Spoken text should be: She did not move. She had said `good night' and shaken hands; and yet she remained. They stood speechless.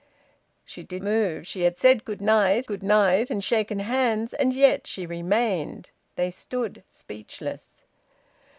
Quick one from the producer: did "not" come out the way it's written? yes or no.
no